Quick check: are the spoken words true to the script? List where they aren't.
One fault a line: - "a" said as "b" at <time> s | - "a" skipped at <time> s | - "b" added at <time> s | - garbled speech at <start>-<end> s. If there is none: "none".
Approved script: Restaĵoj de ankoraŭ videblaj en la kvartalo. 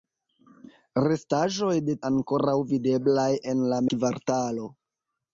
none